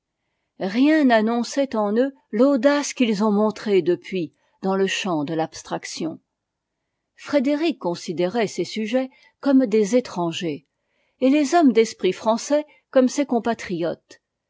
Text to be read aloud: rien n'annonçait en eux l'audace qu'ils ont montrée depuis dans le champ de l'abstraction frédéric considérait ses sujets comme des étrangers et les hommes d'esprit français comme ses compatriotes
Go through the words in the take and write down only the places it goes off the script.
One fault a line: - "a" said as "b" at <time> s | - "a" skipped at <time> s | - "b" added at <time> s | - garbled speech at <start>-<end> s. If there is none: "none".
none